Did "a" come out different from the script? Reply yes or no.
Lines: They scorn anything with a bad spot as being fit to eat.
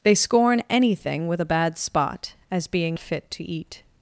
no